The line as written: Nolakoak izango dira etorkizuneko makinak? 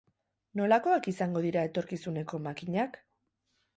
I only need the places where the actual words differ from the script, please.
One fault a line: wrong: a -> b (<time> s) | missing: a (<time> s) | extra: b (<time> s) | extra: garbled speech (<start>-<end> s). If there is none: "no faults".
no faults